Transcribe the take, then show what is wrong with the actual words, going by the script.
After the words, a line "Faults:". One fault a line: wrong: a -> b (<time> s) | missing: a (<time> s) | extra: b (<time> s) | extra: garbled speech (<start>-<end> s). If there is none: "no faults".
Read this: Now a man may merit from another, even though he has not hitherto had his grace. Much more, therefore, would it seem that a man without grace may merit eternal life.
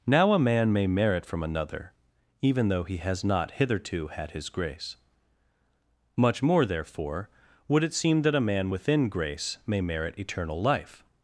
Now a man may merit from another, even though he has not hitherto had his grace. Much more, therefore, would it seem that a man within grace may merit eternal life.
Faults:
wrong: without -> within (8.7 s)